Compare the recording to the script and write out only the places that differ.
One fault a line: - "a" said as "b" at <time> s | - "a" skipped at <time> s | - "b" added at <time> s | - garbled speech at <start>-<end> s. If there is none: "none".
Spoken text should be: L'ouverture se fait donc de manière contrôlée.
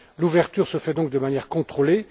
none